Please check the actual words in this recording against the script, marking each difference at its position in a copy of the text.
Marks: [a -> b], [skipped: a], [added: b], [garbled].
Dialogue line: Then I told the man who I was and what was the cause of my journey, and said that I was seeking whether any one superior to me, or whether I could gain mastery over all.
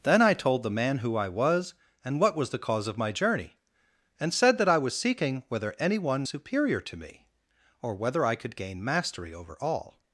Then I told the man who I was and what was the cause of my journey, and said that I was seeking whether any one superior to me, or whether I could gain mastery over all.